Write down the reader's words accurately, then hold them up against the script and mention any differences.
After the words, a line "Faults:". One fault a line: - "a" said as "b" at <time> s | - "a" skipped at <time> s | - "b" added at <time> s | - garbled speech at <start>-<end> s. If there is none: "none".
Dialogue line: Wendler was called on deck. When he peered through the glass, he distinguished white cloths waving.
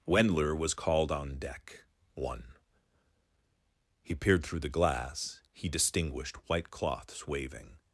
Wendler was called on deck. One he peered through the glass, he distinguished white cloths waving.
Faults:
- "When" said as "One" at 2.1 s